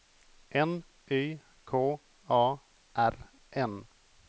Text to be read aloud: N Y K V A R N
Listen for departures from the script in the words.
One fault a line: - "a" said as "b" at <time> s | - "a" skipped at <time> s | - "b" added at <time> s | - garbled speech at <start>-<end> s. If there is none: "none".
- "V" skipped at 2.0 s